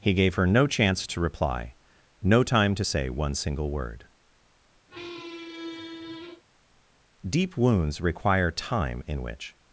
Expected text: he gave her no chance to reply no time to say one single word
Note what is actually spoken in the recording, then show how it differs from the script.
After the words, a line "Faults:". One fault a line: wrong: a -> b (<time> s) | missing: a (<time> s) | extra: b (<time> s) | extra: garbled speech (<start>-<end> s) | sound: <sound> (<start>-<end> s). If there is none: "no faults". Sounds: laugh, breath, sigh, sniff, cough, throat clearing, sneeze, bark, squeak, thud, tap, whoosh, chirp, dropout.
he gave her no chance to reply no time to say one single word deep wounds require time in which
Faults:
sound: squeak (4.9-6.4 s)
extra: deep wounds require time in which (7.3 s)